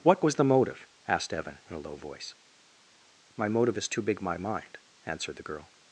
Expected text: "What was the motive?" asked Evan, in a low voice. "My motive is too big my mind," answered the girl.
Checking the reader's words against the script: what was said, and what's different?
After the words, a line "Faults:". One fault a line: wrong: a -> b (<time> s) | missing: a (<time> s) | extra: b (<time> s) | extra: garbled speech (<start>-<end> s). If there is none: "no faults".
"What was the motive?" asked Evan, in a low voice. "My motive is too big my mind," answered the girl.
Faults:
no faults